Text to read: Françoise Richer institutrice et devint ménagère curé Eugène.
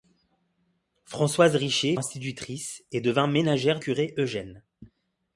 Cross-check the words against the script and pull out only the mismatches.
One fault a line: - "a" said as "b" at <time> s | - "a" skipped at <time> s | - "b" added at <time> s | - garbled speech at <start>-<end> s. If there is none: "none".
none